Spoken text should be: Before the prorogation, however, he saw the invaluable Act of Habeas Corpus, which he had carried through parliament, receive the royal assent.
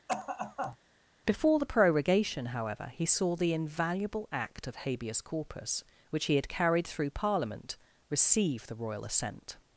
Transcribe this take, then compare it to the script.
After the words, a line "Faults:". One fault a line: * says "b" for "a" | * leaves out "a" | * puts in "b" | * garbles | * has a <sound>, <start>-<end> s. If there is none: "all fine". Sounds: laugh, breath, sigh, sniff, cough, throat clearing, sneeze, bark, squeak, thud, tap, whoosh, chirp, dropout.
Before the prorogation, however, he saw the invaluable Act of Habeas Corpus, which he had carried through parliament, receive the royal assent.
Faults:
* has a cough, 0.1-0.8 s